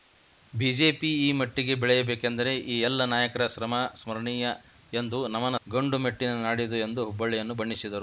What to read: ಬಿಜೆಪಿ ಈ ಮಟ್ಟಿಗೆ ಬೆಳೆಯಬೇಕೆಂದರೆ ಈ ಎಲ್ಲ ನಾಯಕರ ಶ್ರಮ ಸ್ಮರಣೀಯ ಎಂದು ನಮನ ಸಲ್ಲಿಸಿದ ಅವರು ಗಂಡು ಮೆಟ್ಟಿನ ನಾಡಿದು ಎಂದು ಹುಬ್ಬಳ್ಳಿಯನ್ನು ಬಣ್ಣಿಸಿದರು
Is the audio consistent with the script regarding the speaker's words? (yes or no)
no